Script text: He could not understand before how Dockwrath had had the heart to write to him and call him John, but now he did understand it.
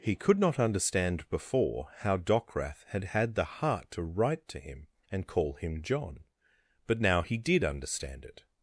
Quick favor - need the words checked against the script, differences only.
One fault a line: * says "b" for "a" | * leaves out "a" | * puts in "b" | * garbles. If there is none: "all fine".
all fine